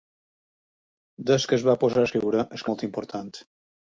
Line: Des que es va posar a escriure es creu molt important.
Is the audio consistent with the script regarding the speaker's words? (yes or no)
no